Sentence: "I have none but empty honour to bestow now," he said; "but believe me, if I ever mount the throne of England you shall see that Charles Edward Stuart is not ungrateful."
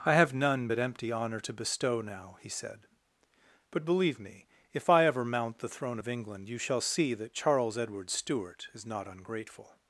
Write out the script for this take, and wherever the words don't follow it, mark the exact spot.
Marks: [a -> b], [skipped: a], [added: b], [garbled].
"I have none but empty honour to bestow now," he said; "but believe me, if I ever mount the throne of England you shall see that Charles Edward Stuart is not ungrateful."